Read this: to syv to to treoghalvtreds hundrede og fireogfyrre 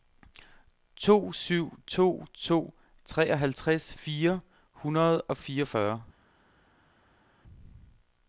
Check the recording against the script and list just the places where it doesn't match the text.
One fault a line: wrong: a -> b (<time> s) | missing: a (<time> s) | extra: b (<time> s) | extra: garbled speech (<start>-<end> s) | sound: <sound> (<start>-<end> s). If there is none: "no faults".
extra: fire (3.9 s)